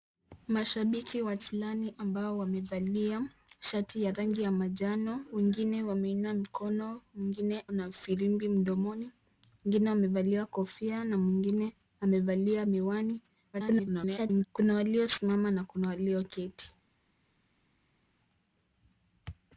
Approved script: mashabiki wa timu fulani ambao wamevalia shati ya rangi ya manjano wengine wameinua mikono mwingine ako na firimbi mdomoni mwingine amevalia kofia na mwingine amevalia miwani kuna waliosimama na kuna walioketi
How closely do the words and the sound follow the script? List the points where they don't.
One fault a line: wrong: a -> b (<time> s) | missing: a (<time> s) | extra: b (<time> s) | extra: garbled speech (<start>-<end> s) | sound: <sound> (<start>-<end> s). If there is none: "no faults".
missing: timu (1.4 s)
missing: ako (7.7 s)
extra: garbled speech (13.5-14.5 s)